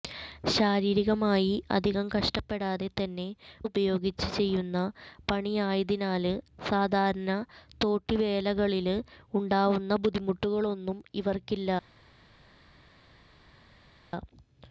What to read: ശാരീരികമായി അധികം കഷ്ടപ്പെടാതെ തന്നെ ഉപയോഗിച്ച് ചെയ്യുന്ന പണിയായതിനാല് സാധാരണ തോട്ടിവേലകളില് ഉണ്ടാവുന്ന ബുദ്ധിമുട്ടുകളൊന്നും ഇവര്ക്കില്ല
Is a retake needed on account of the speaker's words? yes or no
no